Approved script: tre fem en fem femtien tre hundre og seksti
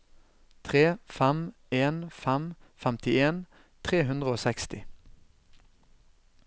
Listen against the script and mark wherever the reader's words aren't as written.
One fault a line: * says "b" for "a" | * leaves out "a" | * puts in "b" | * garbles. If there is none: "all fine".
all fine